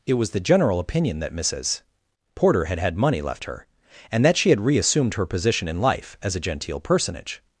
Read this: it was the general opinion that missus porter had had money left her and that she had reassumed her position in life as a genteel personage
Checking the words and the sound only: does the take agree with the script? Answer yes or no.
yes